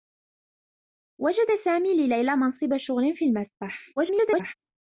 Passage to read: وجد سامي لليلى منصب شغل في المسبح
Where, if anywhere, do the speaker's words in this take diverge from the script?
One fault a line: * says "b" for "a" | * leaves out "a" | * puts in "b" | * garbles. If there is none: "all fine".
* garbles